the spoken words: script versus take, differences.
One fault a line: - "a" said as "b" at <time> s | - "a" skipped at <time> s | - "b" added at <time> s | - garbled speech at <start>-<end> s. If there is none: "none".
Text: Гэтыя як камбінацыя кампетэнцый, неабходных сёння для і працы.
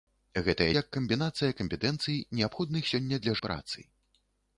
none